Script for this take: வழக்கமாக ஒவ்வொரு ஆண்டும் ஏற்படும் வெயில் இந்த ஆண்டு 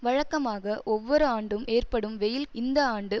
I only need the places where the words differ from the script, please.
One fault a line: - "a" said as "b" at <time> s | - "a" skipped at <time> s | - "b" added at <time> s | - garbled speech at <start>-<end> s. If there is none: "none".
none